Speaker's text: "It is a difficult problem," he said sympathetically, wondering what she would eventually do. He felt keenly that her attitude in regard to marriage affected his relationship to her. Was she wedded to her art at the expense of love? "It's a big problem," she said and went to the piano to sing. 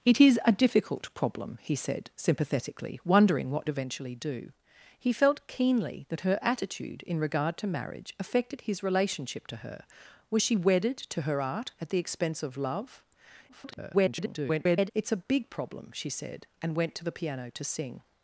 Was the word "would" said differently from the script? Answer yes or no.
yes